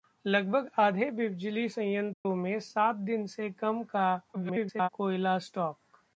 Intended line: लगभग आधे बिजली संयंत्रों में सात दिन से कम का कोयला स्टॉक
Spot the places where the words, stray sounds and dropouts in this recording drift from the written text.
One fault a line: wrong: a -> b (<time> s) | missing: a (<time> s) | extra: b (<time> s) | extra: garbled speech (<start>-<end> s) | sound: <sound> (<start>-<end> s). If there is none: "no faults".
sound: dropout (2.1-2.3 s)
extra: garbled speech (4.3-4.9 s)